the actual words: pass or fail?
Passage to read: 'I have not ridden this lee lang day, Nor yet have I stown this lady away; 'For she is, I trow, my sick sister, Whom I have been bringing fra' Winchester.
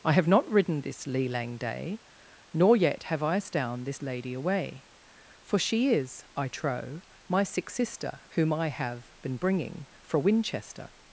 pass